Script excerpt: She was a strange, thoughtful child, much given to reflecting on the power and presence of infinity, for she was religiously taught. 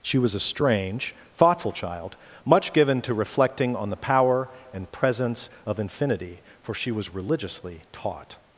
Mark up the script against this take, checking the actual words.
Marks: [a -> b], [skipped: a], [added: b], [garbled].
She was a strange, thoughtful child, much given to reflecting on the power and presence of infinity, for she was religiously taught.